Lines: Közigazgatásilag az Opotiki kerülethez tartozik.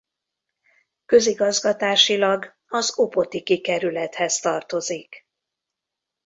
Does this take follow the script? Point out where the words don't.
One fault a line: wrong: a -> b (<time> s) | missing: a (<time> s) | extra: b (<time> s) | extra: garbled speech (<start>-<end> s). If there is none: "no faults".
no faults